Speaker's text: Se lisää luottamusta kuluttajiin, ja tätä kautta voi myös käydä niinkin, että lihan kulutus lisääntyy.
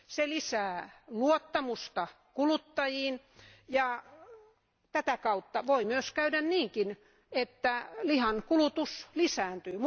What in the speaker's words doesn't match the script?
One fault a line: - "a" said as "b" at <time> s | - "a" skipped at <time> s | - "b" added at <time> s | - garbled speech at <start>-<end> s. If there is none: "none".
none